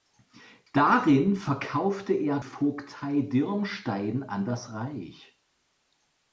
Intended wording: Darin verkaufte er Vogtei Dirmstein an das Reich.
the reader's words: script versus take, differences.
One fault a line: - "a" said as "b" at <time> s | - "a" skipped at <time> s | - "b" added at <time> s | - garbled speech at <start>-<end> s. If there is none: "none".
none